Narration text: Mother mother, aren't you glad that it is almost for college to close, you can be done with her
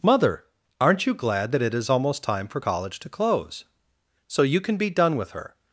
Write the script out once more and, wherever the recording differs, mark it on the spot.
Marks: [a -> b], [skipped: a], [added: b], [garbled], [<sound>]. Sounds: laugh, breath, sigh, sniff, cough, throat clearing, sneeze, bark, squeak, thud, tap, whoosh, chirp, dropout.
Mother [skipped: mother,] aren't you glad that it is almost [added: time] for college to close, [added: so] you can be done with her